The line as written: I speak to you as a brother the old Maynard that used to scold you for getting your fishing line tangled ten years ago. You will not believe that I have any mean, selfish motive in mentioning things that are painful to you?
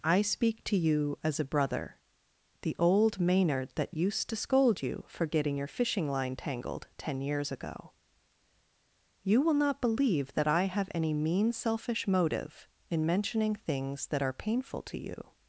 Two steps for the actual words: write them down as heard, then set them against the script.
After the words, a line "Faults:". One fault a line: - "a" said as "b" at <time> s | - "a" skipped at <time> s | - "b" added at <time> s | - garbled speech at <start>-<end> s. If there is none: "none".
I speak to you as a brother the old Maynard that used to scold you for getting your fishing line tangled ten years ago. You will not believe that I have any mean, selfish motive in mentioning things that are painful to you?
Faults:
none